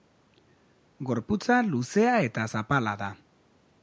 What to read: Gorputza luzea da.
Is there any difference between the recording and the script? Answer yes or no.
yes